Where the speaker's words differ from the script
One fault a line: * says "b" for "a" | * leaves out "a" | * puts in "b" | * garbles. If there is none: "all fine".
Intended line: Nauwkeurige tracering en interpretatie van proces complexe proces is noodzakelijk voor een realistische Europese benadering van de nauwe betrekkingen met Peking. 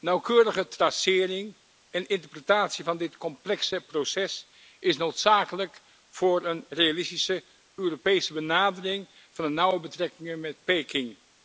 * says "dit" for "proces"